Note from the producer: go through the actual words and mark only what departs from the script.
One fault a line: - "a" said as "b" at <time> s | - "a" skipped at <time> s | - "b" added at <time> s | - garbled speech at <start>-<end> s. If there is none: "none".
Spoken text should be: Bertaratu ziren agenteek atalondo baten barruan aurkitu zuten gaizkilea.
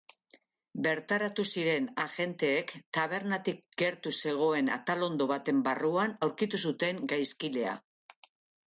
- "tabernatik gertu zegoen" added at 3.0 s